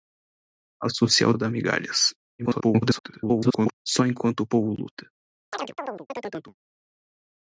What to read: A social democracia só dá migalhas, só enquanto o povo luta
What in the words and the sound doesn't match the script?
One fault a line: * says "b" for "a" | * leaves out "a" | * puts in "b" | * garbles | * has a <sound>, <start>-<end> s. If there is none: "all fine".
* leaves out "democracia só"
* garbles
* has a chirp, 5.5-6.5 s